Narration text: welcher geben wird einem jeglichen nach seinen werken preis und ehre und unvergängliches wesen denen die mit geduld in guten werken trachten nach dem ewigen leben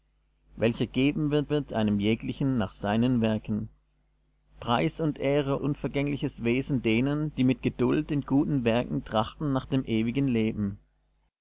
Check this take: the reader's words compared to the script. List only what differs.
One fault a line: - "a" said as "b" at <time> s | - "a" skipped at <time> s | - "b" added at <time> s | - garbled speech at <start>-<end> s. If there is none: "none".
- "wird" added at 1.5 s
- "und" skipped at 5.6 s